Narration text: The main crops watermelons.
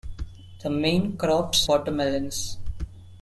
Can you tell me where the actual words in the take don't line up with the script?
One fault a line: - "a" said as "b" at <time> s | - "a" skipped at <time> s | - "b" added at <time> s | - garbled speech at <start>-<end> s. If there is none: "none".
none